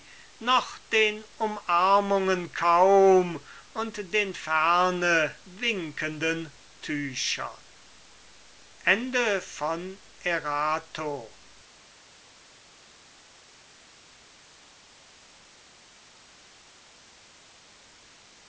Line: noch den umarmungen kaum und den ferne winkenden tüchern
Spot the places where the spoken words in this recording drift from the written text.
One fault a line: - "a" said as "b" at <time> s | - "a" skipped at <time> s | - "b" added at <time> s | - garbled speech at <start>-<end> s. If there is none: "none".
none